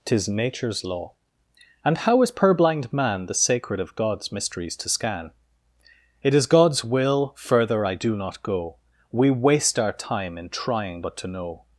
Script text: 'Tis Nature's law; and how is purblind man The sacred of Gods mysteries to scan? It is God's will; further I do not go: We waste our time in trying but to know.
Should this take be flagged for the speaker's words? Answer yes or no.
no